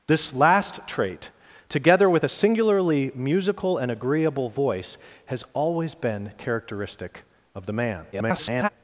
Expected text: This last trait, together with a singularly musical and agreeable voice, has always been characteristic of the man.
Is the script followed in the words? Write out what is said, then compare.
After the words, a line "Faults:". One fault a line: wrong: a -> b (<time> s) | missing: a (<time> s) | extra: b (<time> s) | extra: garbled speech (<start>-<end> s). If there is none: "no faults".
This last trait, together with a singularly musical and agreeable voice, has always been characteristic of the man. [garbled]
Faults:
extra: garbled speech (8.1-8.7 s)